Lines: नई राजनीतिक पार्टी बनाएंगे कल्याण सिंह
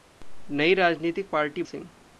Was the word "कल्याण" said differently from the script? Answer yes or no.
yes